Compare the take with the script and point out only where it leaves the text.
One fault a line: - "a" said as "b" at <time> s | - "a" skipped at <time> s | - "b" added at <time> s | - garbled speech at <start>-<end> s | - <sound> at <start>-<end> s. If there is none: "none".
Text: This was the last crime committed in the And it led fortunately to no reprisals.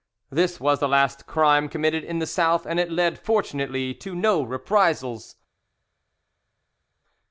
- "South" added at 2.3 s